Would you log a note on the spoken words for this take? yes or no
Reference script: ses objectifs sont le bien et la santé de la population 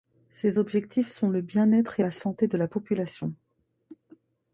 yes